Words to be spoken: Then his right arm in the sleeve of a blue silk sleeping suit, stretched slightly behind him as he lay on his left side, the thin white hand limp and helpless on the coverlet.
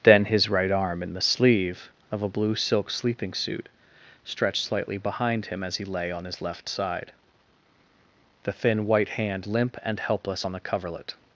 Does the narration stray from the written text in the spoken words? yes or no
no